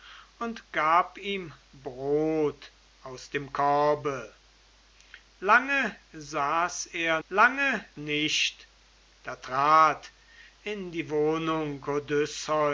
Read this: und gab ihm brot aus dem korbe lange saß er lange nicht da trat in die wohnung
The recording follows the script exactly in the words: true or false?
true